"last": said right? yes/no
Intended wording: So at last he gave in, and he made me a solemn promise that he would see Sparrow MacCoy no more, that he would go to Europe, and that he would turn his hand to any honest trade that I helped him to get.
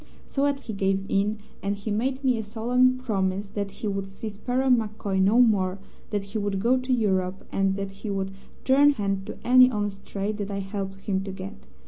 no